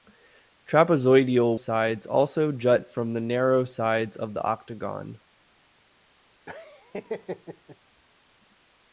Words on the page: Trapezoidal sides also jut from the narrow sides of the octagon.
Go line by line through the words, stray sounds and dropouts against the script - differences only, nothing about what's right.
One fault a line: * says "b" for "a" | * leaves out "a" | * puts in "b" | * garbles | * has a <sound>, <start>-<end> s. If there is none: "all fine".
* has a laugh, 6.5-7.8 s